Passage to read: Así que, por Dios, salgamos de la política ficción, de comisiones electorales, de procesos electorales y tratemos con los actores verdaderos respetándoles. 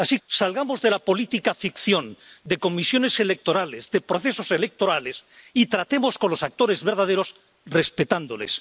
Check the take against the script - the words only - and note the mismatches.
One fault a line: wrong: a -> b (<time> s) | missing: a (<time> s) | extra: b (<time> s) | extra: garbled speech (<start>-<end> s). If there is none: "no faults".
missing: que por Dios (0.2 s)